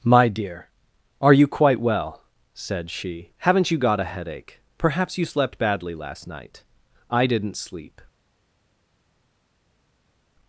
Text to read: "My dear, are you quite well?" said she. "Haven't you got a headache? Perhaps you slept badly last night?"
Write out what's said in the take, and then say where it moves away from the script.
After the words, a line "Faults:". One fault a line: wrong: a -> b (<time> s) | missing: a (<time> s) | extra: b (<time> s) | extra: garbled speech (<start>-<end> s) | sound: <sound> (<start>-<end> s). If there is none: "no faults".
"My dear, are you quite well?" said she. "Haven't you got a headache? Perhaps you slept badly last night?" "I didn't sleep
Faults:
extra: I didn't sleep (7.1 s)